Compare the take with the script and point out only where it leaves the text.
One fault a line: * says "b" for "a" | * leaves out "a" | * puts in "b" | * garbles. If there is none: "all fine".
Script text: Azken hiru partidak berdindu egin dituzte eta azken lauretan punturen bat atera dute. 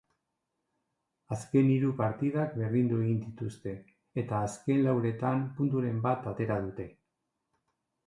all fine